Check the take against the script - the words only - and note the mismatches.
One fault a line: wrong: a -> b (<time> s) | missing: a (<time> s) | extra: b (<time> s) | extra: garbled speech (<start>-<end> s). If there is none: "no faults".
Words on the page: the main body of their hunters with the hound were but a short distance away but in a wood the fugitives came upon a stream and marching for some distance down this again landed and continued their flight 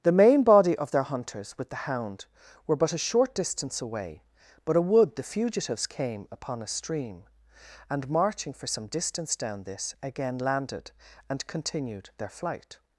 missing: in (4.8 s)